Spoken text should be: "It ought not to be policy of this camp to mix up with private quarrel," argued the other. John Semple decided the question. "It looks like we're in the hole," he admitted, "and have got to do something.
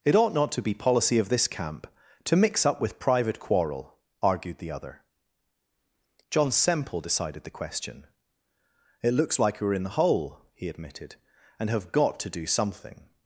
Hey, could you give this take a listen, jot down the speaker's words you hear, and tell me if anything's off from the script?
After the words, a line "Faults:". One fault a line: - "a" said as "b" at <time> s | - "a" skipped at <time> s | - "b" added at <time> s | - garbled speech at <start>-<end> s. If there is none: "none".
"It ought not to be policy of this camp to mix up with private quarrel," argued the other. John Semple decided the question. "It looks like we're in the hole," he admitted, "and have got to do something.
Faults:
none